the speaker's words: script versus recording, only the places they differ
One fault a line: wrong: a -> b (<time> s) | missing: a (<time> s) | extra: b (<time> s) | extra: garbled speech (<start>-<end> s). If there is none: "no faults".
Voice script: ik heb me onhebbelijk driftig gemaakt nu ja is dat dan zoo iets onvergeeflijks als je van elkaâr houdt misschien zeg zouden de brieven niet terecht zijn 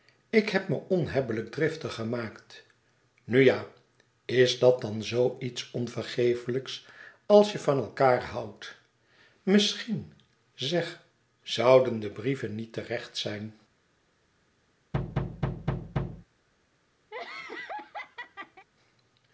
no faults